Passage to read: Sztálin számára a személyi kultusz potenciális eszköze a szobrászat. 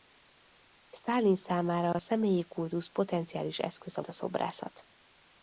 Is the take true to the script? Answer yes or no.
yes